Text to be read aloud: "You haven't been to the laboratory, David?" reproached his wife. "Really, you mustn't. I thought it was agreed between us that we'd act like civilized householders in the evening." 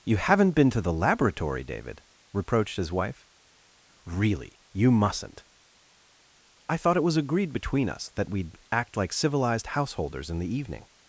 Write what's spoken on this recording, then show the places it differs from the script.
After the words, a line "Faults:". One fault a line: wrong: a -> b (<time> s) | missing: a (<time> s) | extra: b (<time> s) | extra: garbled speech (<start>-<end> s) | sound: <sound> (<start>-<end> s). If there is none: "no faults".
"You haven't been to the laboratory, David?" reproached his wife. "Really, you mustn't. I thought it was agreed between us that we'd act like civilized householders in the evening."
Faults:
no faults